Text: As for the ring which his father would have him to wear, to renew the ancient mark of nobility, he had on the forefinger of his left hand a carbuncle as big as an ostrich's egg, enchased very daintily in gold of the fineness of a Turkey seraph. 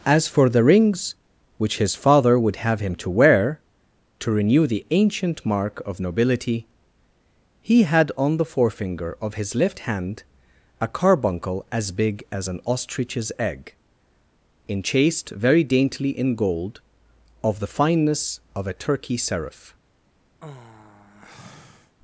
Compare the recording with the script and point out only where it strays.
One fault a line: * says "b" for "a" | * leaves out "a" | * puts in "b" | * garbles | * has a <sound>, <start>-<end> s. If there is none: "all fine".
* says "rings" for "ring"
* has a sigh, 20.4-22.0 s